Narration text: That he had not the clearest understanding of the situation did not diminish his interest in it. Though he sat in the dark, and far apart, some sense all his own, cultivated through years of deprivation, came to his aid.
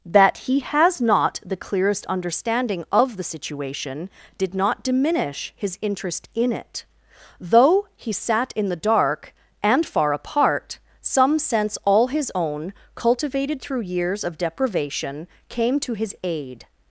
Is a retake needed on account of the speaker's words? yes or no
yes